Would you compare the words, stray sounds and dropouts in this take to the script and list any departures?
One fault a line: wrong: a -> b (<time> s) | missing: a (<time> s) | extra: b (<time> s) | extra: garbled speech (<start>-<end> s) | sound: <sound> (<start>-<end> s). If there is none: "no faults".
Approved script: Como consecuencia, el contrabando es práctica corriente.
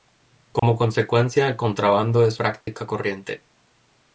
sound: dropout (0.6-0.6 s)
sound: dropout (2.6-2.7 s)